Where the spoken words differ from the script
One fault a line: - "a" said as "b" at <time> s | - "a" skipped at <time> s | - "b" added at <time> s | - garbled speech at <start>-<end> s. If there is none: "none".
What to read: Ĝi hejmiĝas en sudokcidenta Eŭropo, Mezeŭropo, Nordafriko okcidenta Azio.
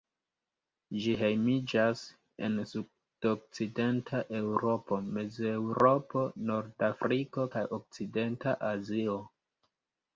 - "kaj" added at 7.6 s